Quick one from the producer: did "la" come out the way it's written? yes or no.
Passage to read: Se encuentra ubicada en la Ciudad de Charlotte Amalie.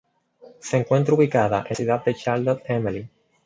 no